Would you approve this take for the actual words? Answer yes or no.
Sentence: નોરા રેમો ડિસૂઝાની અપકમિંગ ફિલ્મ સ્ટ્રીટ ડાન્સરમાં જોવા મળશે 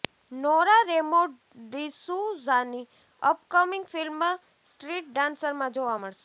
yes